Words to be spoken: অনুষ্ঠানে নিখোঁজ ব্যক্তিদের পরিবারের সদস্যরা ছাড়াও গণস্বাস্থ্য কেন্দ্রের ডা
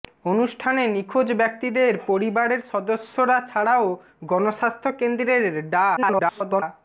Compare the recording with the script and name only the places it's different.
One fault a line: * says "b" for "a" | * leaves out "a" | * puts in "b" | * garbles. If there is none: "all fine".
* garbles